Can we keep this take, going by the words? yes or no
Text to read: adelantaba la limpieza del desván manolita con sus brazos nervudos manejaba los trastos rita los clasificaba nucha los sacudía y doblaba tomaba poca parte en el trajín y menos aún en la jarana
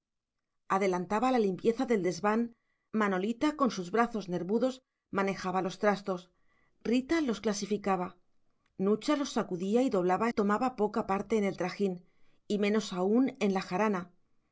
yes